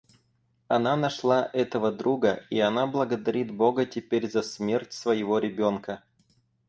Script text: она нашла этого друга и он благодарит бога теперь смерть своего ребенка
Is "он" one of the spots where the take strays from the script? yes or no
yes